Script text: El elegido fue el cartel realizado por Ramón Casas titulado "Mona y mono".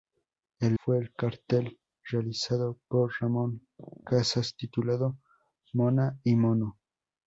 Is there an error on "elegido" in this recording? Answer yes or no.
yes